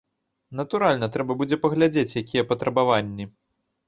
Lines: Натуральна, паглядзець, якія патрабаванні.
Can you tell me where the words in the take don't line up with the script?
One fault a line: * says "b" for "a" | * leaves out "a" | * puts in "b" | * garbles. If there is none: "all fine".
* puts in "трэба будзе"